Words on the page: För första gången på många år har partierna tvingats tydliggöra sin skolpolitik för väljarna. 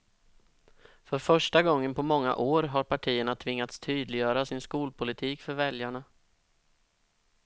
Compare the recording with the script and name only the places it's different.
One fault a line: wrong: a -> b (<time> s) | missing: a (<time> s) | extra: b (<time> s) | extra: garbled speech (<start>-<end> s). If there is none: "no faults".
no faults